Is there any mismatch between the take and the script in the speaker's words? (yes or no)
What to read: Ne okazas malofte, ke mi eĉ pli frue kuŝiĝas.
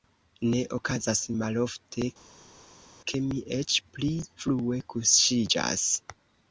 no